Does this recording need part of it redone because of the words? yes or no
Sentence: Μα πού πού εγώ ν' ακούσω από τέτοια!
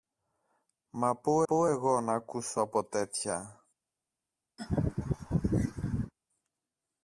no